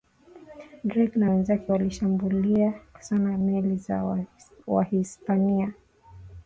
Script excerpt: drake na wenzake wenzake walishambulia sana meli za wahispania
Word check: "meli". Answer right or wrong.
right